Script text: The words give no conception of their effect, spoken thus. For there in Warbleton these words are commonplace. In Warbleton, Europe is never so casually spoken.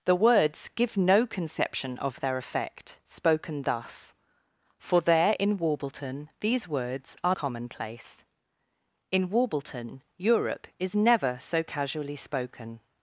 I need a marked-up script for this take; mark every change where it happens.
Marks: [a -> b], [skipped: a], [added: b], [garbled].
The words give no conception of their effect, spoken thus. For there in Warbleton these words are commonplace. In Warbleton, Europe is never so casually spoken.